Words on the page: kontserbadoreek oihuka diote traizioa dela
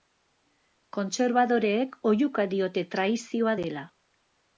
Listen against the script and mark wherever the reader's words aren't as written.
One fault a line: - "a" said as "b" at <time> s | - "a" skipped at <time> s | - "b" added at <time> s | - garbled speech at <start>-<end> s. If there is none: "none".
none